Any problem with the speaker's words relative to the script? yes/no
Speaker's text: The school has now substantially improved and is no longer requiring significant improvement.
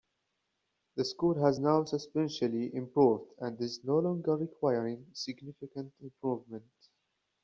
no